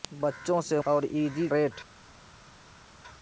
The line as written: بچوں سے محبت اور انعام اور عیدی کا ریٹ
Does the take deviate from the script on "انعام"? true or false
true